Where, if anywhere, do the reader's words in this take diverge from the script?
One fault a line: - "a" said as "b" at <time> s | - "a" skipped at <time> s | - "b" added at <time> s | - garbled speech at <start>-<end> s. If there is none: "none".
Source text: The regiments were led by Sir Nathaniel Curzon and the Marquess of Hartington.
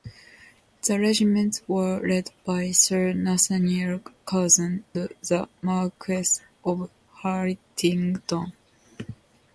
- "and" skipped at 4.8 s